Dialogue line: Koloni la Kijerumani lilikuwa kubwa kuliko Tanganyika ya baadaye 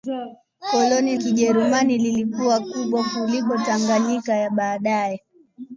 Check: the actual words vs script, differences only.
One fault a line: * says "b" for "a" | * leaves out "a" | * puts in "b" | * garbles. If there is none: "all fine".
* leaves out "la"